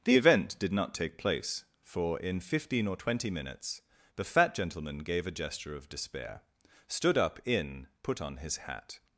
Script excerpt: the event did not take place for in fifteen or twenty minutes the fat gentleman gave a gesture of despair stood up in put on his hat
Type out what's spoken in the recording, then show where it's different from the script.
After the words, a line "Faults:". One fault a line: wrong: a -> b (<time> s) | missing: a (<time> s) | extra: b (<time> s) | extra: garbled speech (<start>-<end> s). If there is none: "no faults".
the event did not take place for in fifteen or twenty minutes the fat gentleman gave a gesture of despair stood up in put on his hat
Faults:
no faults